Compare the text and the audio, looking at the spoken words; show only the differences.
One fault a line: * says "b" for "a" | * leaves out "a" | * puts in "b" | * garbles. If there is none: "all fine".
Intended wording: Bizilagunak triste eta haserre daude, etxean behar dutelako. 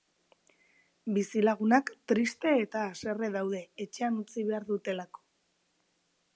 * puts in "utzi"